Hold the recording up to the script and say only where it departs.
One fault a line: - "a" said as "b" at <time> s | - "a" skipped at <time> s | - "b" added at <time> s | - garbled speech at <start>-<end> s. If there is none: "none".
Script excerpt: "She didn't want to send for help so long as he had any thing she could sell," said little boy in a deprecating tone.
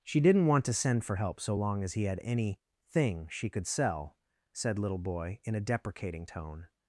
none